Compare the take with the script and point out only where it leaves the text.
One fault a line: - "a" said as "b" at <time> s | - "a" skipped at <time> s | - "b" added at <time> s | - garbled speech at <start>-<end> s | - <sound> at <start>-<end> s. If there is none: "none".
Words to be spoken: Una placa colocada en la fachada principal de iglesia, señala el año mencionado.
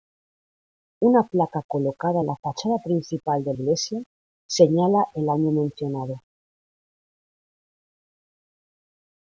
none